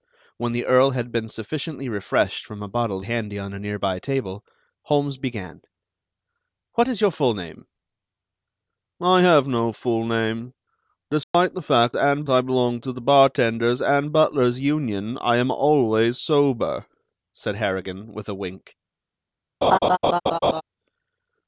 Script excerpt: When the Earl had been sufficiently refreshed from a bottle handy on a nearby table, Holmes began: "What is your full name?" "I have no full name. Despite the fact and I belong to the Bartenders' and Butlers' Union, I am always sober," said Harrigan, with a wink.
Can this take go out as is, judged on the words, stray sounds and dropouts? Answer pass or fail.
fail